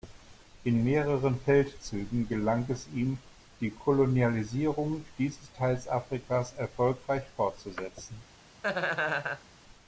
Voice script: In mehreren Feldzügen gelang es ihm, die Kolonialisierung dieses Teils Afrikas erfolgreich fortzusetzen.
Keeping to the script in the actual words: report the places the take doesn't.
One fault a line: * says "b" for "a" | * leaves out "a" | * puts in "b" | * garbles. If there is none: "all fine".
all fine